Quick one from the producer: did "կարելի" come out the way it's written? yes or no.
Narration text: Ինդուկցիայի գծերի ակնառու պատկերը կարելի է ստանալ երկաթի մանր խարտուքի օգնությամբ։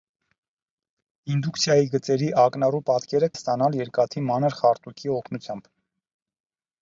no